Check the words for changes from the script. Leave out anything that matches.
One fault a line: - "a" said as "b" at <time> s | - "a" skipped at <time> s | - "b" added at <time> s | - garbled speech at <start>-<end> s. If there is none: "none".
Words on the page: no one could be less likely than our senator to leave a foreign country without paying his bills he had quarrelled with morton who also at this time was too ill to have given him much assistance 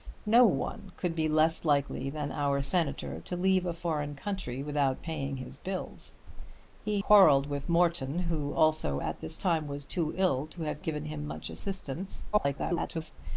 - "had" skipped at 7.0 s
- garbled speech at 12.3-13.1 s